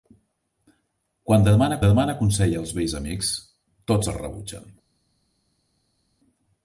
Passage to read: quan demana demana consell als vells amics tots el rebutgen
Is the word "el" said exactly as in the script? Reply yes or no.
yes